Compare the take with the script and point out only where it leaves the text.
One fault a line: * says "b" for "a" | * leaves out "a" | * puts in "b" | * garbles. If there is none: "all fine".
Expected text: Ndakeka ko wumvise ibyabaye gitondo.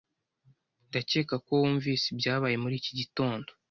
* puts in "muri iki"